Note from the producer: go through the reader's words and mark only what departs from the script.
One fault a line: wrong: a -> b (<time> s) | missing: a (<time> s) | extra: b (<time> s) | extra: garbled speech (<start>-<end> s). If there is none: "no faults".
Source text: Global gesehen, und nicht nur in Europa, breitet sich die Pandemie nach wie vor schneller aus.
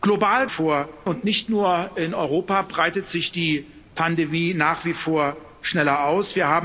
wrong: gesehen -> vor (0.5 s)